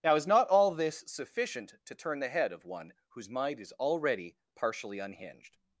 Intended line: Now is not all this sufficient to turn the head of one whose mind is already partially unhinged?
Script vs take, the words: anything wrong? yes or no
no